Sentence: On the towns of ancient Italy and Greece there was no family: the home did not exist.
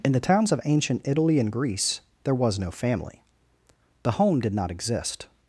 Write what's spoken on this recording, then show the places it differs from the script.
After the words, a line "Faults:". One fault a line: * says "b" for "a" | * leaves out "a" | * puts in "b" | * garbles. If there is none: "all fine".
In the towns of ancient Italy and Greece there was no family: the home did not exist.
Faults:
* says "In" for "On"